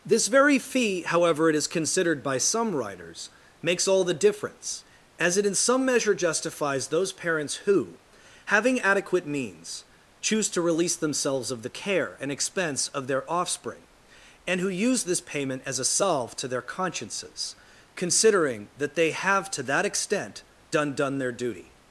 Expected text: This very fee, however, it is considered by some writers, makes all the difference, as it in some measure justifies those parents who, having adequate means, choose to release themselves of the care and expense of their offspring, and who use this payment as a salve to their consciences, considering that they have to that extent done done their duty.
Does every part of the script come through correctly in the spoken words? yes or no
yes